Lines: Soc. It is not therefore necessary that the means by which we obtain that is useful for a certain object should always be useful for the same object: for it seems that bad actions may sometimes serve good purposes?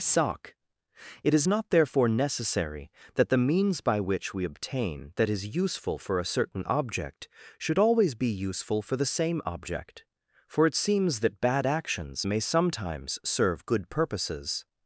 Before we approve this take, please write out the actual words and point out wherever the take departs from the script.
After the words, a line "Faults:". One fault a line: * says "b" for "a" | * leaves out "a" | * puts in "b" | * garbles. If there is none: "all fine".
Soc. It is not therefore necessary that the means by which we obtain that is useful for a certain object should always be useful for the same object: for it seems that bad actions may sometimes serve good purposes?
Faults:
all fine